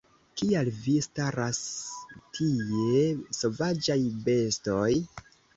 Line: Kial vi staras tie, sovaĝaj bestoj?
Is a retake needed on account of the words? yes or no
no